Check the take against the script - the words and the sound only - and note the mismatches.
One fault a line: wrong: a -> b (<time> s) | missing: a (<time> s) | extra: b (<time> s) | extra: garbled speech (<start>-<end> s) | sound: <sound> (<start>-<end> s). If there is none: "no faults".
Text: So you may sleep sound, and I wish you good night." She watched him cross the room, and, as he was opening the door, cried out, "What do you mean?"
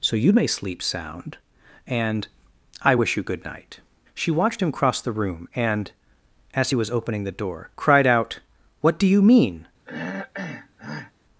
sound: throat clearing (9.9-11.1 s)